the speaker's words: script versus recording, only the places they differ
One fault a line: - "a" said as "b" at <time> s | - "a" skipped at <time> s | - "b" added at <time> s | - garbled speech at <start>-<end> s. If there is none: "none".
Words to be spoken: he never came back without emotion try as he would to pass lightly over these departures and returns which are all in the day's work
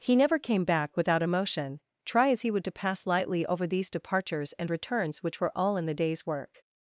- "are" said as "were" at 5.4 s